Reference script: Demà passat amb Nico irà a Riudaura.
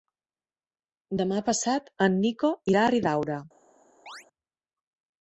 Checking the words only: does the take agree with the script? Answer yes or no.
no